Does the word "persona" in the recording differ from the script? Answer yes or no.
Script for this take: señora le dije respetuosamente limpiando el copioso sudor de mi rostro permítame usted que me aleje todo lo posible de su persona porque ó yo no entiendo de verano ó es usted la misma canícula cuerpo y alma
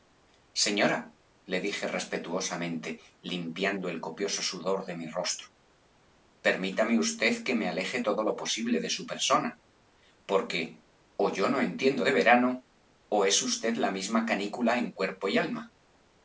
no